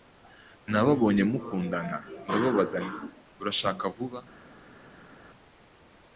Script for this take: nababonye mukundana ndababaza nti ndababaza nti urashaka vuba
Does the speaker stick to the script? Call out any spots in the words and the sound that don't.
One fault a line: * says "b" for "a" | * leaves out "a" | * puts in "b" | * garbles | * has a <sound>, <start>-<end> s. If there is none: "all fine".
* leaves out "ndababaza nti"